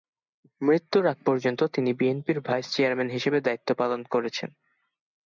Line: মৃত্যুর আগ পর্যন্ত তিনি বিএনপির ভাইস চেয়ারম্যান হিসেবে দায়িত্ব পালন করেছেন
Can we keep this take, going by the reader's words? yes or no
yes